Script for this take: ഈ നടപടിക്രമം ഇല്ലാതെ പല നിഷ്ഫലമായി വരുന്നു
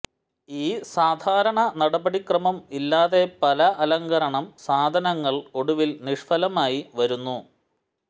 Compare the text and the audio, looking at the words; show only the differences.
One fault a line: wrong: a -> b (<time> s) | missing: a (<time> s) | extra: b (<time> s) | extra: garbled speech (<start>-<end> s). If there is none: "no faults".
extra: സാധാരണ (0.9 s)
extra: അലങ്കരണം സാധനങ്ങൾ ഒടുവിൽ (3.8 s)